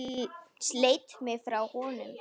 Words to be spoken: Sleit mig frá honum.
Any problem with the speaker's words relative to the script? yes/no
no